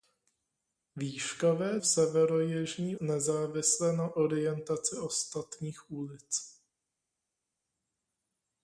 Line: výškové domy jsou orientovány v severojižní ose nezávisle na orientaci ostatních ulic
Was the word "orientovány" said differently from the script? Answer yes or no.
yes